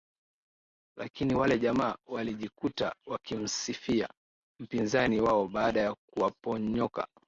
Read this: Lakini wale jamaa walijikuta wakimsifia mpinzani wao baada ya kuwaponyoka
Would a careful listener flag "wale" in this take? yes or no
no